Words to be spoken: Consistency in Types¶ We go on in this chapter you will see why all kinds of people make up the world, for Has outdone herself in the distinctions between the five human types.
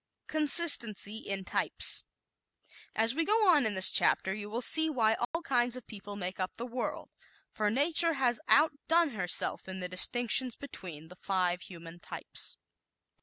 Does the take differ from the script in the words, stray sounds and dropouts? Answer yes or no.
yes